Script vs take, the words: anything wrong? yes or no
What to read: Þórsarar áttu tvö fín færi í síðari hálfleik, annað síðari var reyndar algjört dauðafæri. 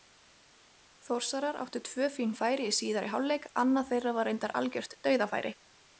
yes